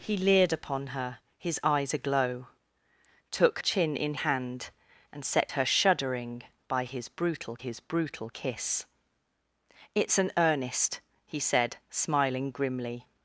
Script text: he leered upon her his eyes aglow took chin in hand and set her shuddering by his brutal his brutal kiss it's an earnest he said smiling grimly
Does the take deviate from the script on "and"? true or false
false